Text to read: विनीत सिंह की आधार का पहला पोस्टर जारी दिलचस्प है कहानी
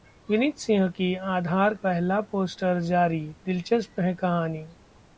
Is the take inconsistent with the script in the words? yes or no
yes